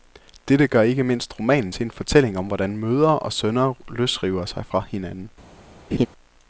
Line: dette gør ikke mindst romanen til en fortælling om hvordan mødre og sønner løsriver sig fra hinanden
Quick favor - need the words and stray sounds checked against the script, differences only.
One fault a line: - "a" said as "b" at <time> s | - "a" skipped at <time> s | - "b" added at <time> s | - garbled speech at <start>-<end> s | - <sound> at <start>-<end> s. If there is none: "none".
- laugh at 5.9-6.1 s